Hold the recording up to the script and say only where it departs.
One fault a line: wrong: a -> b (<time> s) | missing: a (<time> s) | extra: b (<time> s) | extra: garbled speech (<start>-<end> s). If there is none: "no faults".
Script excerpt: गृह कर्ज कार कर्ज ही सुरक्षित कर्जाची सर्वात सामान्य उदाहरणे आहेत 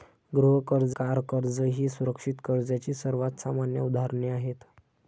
no faults